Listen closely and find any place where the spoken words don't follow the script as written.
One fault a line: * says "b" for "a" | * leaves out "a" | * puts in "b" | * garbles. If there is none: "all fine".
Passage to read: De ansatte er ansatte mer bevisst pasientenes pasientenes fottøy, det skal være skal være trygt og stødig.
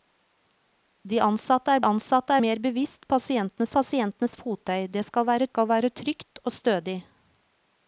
all fine